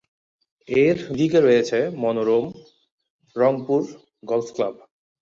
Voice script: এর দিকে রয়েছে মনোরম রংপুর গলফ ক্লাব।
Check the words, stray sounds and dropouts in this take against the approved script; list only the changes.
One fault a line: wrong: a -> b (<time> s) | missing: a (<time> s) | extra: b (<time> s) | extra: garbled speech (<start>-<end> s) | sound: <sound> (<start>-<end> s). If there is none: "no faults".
no faults